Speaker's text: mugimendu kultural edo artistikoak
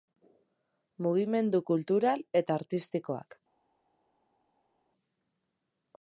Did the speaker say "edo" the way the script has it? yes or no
no